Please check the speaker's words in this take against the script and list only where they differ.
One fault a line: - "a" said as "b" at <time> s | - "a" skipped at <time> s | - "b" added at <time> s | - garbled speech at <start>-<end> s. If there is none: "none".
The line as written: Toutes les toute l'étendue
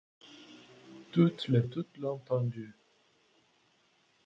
none